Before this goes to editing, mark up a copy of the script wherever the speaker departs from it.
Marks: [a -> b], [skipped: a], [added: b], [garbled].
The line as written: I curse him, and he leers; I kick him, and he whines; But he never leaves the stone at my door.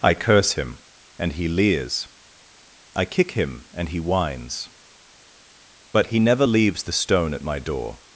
I curse him, and he leers; I kick him, and he whines; But he never leaves the stone at my door.